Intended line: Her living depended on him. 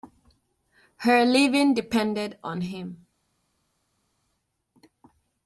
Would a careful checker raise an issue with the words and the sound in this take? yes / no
no